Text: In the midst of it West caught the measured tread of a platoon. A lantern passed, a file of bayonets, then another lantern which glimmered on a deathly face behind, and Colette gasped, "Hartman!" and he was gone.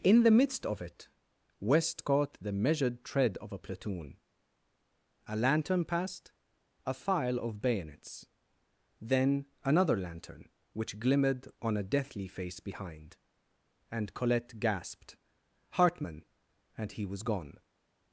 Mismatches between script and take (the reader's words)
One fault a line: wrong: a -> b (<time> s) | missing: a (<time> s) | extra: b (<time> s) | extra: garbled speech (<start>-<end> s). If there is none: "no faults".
no faults